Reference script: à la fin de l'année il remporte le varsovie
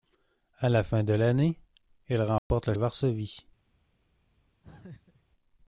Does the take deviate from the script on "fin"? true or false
false